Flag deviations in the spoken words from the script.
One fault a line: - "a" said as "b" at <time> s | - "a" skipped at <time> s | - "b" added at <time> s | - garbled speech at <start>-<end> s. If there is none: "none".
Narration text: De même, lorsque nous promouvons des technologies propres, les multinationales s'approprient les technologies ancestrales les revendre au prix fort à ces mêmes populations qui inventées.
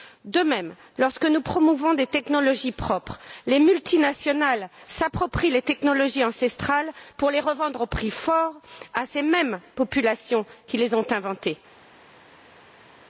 - "pour" added at 7.2 s
- "les ont" added at 10.8 s